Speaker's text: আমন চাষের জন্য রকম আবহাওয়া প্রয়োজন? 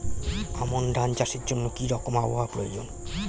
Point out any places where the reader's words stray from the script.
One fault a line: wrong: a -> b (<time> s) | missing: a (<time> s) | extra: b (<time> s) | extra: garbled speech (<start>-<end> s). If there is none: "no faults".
extra: ধান (0.9 s)
extra: কি (1.8 s)